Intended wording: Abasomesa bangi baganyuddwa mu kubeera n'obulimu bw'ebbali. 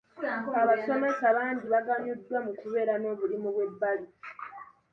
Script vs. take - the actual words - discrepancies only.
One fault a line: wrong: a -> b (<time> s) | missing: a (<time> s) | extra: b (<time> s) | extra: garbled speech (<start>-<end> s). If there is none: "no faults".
no faults